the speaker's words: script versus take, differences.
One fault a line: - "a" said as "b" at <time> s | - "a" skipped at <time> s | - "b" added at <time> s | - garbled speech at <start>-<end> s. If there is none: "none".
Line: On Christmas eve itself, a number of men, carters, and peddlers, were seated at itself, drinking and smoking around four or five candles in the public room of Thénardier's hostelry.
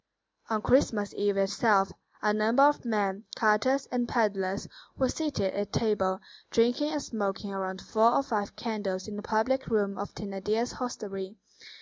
- "itself" said as "table" at 5.7 s